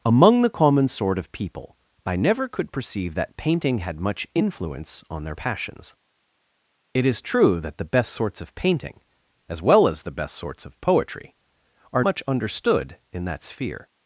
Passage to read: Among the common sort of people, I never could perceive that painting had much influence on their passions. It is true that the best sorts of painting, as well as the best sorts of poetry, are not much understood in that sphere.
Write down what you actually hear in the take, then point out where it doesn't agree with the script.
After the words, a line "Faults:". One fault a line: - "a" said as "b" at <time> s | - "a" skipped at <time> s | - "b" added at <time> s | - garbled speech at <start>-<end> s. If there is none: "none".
Among the common sort of people, I never could perceive that painting had much influence on their passions. It is true that the best sorts of painting, as well as the best sorts of poetry, are much understood in that sphere.
Faults:
- "not" skipped at 12.0 s